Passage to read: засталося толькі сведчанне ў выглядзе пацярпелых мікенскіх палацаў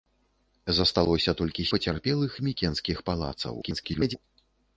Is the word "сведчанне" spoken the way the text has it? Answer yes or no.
no